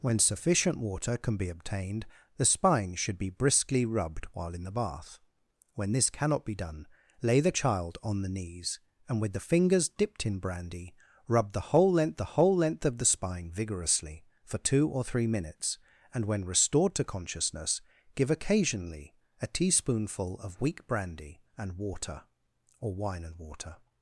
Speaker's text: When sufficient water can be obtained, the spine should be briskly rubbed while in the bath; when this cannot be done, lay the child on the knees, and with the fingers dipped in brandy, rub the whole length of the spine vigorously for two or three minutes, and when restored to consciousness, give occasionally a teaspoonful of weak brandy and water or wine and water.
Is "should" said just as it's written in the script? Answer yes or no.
yes